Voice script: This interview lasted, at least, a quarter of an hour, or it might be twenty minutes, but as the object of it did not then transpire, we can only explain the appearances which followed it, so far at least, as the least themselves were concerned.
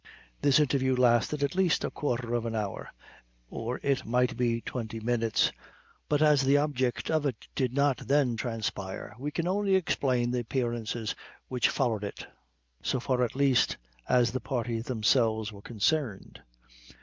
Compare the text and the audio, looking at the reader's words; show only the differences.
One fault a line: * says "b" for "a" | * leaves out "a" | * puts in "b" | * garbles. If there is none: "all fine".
* says "parties" for "least"